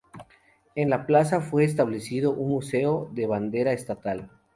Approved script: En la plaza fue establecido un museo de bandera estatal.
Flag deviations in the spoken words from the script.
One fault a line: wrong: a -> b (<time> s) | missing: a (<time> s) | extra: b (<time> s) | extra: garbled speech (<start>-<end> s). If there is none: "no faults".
no faults